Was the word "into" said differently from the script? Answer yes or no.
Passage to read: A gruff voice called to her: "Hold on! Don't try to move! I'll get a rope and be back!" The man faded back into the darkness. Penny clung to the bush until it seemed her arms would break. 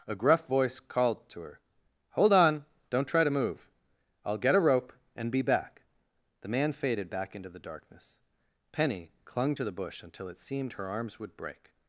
no